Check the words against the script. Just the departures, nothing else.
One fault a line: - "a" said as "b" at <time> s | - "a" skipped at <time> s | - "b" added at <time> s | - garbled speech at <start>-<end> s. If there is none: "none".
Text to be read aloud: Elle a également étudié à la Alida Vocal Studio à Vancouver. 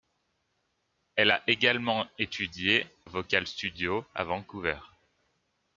- "à la Alida" skipped at 2.9 s